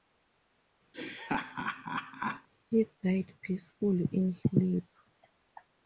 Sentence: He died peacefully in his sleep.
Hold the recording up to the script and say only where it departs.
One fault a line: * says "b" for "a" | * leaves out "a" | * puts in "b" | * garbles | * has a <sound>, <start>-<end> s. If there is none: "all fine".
* has a laugh, 0.9-2.5 s
* leaves out "his"